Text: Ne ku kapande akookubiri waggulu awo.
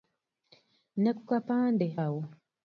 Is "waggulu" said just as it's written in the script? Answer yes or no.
no